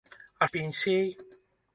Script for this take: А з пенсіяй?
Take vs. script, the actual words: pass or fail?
pass